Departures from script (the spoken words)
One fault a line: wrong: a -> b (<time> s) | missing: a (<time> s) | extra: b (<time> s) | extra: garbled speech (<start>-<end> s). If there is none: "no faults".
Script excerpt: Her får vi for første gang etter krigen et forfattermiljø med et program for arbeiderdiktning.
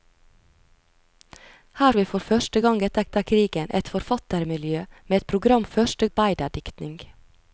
missing: får (1.9 s)
extra: etter (3.1 s)
wrong: for -> første (5.7 s)